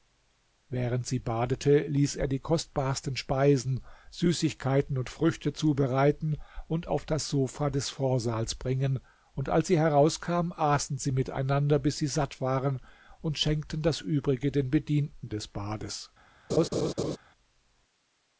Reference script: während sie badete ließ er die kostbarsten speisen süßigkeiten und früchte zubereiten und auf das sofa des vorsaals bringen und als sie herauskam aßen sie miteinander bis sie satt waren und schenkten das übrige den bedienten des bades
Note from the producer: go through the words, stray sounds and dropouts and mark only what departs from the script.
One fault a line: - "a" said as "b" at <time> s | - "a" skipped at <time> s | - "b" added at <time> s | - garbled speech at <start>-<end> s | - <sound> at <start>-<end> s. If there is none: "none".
- laugh at 16.5-17.2 s